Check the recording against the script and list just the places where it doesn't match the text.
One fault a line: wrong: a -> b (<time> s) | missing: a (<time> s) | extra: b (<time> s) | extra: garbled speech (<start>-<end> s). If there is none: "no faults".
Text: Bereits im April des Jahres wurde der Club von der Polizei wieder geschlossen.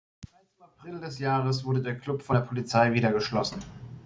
no faults